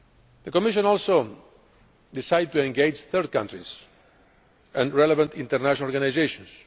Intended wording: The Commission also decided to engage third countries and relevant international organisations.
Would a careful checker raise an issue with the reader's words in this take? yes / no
no